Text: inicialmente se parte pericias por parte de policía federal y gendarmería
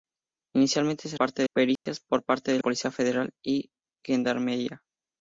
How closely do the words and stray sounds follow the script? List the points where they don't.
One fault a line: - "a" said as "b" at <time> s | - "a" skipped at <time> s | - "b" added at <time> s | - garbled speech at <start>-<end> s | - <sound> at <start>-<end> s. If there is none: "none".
- dropout at 1.8-1.9 s